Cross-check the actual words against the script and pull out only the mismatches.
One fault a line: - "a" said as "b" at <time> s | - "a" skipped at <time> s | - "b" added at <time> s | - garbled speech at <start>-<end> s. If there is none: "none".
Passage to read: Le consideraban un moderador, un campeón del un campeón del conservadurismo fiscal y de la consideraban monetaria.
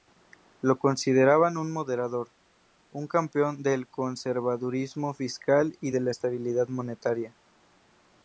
- "Le" said as "Lo" at 0.6 s
- "un campeón del" skipped at 3.9 s
- "consideraban" said as "estabilidad" at 6.1 s